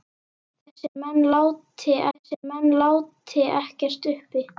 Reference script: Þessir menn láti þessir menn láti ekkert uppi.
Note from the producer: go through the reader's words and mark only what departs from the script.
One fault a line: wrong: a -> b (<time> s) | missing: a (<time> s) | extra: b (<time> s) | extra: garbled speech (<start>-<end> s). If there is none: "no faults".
no faults